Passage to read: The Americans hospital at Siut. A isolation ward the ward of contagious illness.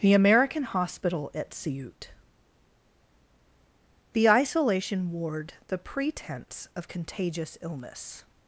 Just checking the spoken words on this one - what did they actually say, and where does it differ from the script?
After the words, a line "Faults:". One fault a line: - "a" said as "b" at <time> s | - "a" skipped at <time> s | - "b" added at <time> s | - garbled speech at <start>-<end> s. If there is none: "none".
The American hospital at Siut. The isolation ward the pretense of contagious illness.
Faults:
- "Americans" said as "American" at 0.1 s
- "A" said as "The" at 4.1 s
- "ward" said as "pretense" at 5.8 s